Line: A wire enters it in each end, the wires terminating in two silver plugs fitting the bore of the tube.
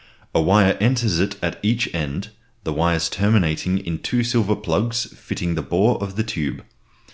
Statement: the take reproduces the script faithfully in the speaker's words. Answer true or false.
false